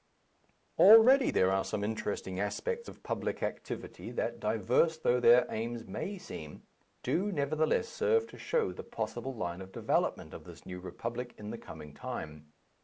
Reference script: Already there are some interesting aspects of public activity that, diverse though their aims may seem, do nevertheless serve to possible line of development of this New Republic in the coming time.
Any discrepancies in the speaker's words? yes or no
yes